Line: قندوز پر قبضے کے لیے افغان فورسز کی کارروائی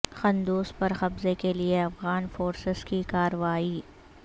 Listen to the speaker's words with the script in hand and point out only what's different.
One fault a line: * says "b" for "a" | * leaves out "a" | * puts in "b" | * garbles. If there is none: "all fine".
all fine